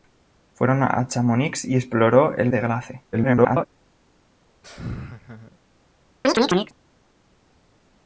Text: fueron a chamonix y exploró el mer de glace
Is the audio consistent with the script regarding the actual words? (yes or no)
no